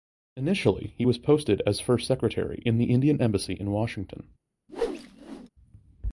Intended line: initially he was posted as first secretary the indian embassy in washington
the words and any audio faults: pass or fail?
fail